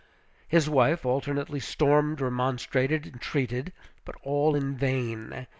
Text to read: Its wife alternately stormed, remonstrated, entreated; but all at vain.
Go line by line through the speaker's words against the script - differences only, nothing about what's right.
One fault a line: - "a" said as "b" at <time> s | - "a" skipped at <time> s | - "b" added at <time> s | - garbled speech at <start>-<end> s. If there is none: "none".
- "Its" said as "His" at 0.5 s
- "at" said as "in" at 4.5 s